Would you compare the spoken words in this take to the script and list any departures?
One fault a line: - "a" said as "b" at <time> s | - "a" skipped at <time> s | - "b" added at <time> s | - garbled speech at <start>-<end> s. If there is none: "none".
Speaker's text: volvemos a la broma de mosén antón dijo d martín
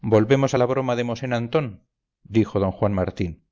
- "juan" added at 2.7 s